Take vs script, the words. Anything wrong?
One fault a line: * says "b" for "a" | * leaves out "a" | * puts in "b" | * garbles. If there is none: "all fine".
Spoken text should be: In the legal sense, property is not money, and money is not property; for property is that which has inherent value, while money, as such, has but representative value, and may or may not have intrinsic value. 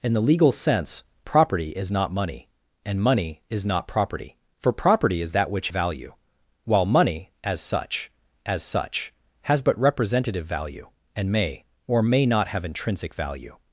* leaves out "has inherent"
* puts in "as such"